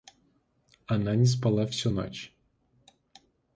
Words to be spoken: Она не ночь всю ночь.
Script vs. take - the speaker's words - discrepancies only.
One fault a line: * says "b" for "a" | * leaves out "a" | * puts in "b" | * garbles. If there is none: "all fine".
* says "спала" for "ночь"